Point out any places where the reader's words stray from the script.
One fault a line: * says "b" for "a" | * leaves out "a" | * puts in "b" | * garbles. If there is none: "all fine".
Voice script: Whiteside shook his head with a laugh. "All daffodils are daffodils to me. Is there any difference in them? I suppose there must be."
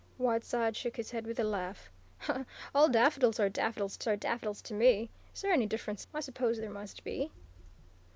* puts in "are daffodils to"
* leaves out "in them"